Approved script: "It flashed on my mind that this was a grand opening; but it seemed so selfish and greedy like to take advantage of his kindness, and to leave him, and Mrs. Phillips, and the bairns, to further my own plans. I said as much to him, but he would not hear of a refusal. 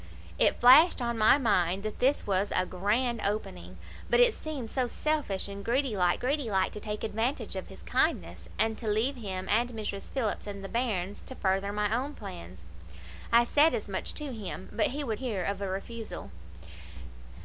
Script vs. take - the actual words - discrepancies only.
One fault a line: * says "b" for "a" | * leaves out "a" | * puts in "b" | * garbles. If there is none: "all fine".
* puts in "greedy like"
* leaves out "not"